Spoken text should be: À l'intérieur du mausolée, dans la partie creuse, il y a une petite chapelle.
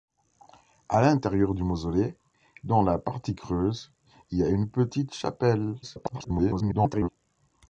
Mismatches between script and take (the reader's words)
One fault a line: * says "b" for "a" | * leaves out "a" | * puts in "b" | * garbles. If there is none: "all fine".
* garbles